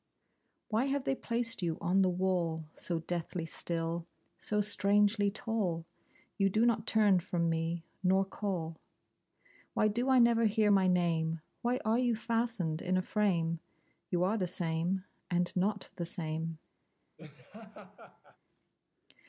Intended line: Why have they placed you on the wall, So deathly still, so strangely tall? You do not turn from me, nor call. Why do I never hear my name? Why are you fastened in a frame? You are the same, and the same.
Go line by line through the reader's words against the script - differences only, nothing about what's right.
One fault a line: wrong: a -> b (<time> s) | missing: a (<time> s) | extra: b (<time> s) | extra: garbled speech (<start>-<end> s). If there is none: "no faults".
extra: not (15.5 s)